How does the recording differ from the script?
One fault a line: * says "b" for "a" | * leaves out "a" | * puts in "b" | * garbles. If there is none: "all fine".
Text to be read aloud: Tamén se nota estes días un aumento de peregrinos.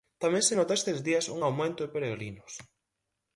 all fine